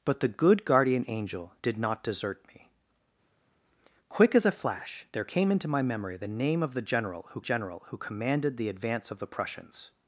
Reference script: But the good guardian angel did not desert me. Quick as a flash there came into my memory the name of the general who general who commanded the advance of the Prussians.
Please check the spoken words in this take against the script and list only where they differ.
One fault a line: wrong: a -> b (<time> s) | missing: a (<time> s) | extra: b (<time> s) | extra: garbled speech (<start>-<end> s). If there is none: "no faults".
no faults